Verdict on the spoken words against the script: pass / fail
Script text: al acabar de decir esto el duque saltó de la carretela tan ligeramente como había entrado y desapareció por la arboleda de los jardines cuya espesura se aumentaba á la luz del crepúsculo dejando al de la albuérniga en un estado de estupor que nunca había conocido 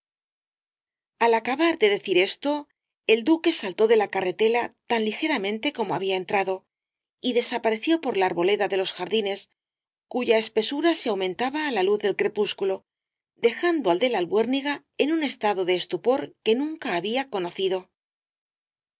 pass